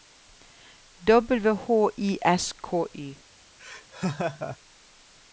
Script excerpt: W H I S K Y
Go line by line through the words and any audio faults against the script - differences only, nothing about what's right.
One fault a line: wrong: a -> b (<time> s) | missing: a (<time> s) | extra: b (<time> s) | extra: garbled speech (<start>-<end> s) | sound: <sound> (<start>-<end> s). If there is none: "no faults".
sound: laugh (3.6-4.6 s)